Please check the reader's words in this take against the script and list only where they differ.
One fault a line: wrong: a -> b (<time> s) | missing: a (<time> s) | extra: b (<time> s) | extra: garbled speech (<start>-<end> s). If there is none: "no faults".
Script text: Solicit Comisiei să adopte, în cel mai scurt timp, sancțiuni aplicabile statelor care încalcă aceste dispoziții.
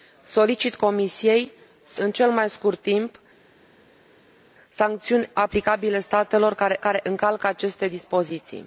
missing: adopte (2.0 s)
extra: care (6.8 s)